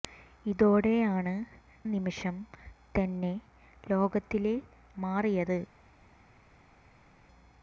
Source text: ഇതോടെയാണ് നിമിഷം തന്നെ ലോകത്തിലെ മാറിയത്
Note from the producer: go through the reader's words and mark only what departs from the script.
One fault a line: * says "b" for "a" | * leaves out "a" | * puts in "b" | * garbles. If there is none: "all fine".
all fine